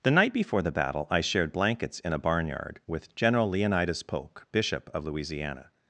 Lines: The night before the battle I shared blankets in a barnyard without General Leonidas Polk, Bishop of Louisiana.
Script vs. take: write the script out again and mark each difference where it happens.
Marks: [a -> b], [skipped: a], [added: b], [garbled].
The night before the battle I shared blankets in a barnyard [without -> with] General Leonidas Polk, Bishop of Louisiana.